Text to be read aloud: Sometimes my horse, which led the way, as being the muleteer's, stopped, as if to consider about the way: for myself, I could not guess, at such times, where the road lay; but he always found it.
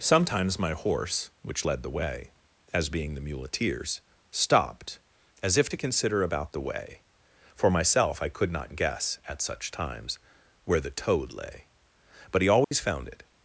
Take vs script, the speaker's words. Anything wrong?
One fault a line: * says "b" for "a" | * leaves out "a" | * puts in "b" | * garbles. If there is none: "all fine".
* says "toad" for "road"